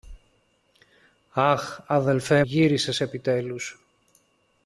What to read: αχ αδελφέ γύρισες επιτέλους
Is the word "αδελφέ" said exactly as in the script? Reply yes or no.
yes